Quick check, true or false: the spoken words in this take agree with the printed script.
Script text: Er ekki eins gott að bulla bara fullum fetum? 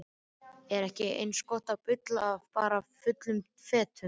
true